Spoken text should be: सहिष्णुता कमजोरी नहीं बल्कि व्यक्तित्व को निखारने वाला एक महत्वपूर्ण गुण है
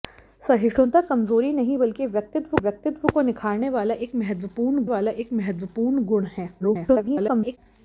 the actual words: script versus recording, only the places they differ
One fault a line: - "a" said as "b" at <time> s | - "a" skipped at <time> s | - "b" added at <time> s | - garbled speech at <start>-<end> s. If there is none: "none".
- "व्यक्तित्व" added at 2.6 s
- "वाला एक महत्वपूर्ण" added at 4.9 s
- garbled speech at 6.6-7.6 s